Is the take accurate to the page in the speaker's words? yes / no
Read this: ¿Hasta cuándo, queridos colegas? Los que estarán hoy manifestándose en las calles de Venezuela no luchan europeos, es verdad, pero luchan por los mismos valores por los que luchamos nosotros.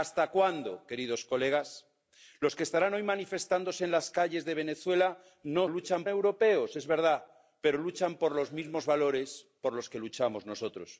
yes